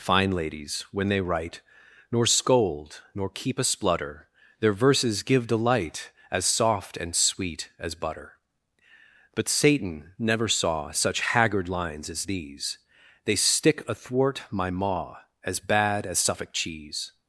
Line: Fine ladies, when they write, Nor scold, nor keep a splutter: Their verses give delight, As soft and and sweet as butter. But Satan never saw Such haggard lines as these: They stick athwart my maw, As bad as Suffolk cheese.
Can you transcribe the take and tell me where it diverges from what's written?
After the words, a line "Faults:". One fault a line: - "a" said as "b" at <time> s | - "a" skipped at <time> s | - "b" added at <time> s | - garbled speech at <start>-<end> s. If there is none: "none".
Fine ladies, when they write, Nor scold, nor keep a splutter: Their verses give delight, As soft and sweet as butter. But Satan never saw Such haggard lines as these: They stick athwart my maw, As bad as Suffolk cheese.
Faults:
- "and" skipped at 7.2 s